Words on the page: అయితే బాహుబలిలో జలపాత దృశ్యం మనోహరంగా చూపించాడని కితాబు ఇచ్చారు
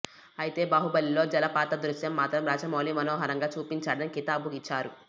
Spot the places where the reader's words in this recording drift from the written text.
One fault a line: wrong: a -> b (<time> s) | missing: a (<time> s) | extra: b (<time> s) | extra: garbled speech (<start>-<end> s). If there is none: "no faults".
extra: మాత్రం రాజమౌళి (2.1 s)